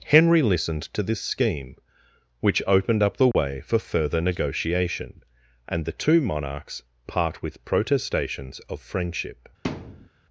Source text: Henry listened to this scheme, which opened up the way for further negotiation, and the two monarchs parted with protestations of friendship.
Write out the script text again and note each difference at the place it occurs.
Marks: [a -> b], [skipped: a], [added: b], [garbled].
Henry listened to this scheme, which opened up the way for further negotiation, and the two monarchs [parted -> part] with protestations of friendship.